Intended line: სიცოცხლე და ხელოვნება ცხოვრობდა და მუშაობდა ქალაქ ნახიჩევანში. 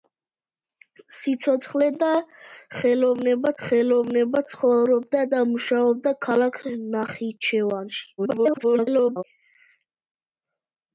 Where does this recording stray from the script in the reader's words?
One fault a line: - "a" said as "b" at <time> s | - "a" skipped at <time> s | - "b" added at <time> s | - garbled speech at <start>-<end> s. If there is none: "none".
- "ხელოვნება" added at 3.6 s
- garbled speech at 8.2-9.2 s